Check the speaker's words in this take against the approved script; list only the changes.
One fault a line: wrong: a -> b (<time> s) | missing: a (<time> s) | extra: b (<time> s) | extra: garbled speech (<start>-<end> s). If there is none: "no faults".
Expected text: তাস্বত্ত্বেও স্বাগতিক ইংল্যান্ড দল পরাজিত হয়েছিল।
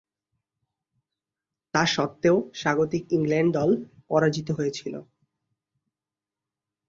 no faults